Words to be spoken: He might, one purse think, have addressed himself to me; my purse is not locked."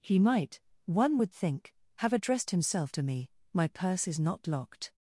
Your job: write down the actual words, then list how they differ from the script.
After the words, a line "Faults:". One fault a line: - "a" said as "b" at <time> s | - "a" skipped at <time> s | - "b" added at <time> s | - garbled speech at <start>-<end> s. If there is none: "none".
He might, one would think, have addressed himself to me; my purse is not locked."
Faults:
- "purse" said as "would" at 1.2 s